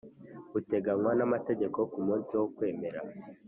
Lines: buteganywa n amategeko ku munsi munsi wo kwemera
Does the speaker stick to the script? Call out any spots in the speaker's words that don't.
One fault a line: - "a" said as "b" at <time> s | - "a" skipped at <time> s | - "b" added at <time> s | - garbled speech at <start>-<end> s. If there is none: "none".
- "munsi" skipped at 2.3 s